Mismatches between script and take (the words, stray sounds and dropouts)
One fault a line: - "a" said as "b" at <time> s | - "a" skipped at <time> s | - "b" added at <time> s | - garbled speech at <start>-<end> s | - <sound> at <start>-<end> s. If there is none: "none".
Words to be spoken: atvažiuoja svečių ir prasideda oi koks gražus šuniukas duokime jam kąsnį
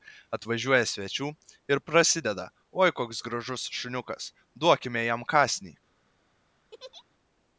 - laugh at 6.7-7.0 s